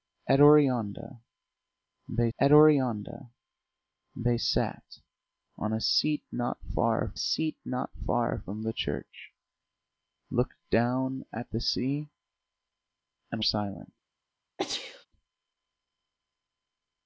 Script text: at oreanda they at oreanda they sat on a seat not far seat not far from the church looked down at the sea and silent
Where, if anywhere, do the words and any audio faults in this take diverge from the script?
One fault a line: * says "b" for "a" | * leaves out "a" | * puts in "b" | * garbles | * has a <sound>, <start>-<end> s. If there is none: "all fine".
* has a sneeze, 14.6-15.1 s